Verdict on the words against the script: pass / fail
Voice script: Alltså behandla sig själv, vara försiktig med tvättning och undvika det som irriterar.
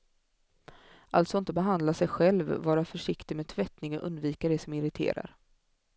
fail